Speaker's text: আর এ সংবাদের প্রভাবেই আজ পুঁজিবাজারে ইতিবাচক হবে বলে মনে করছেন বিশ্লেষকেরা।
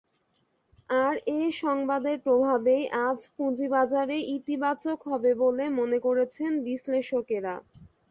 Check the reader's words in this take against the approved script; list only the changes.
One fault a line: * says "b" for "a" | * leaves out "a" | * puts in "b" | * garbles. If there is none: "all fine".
all fine